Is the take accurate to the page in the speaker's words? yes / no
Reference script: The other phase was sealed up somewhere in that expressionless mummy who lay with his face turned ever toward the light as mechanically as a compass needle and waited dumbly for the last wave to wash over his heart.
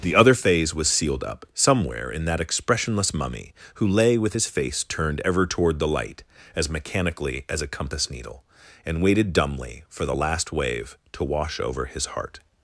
yes